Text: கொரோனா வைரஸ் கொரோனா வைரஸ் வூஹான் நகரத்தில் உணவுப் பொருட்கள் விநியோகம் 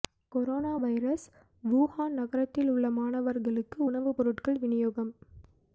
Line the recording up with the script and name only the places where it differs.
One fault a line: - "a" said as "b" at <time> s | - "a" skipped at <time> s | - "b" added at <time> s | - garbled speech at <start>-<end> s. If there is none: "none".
- "கொரோனா வைரஸ் வூஹான் நகரத்தில்" said as "வூஹான் நகரத்தில் உள்ள மாணவர்களுக்கு" at 1.6 s